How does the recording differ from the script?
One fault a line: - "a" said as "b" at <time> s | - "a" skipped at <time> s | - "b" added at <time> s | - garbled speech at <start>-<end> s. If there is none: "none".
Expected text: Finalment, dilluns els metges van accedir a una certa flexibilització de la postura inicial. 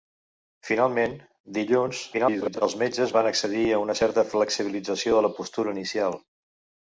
- garbled speech at 2.1-2.6 s